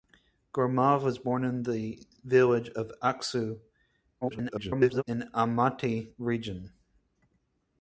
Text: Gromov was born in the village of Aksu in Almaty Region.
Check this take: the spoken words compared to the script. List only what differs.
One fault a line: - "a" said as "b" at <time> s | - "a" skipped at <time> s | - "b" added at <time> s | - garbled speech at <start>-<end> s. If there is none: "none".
- garbled speech at 4.2-5.0 s